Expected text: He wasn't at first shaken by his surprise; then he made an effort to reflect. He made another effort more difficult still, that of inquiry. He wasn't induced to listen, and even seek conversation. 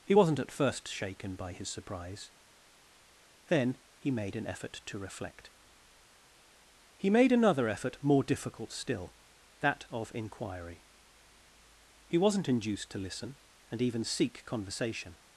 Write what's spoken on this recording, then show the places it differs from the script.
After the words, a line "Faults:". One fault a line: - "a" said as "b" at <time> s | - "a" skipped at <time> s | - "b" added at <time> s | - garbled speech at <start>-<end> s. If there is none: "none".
He wasn't at first shaken by his surprise; then he made an effort to reflect. He made another effort more difficult still, that of inquiry. He wasn't induced to listen, and even seek conversation.
Faults:
none